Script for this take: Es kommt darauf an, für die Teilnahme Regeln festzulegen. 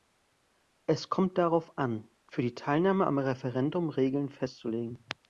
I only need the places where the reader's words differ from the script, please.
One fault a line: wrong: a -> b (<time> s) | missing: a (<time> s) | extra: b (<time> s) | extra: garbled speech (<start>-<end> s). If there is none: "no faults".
extra: am Referendum (3.1 s)